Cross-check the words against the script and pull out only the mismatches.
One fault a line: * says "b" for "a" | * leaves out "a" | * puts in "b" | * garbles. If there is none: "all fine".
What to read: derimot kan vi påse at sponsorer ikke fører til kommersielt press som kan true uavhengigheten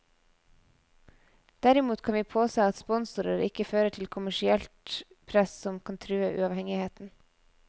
all fine